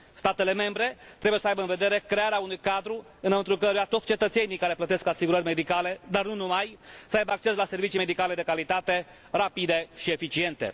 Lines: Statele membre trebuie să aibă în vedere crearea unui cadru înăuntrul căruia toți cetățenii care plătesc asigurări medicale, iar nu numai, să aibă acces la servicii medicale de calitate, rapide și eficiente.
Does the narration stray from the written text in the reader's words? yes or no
yes